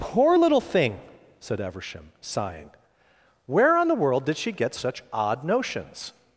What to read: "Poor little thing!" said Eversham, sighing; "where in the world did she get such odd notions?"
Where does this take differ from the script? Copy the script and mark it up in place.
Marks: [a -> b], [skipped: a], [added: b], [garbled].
"Poor little thing!" said Eversham, sighing; "where [in -> on] the world did she get such odd notions?"